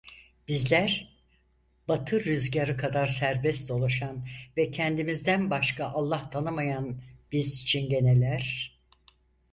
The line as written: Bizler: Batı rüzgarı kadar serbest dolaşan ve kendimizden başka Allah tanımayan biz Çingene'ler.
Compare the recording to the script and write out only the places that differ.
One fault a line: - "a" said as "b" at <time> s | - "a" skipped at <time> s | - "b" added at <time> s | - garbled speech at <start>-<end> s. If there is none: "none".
none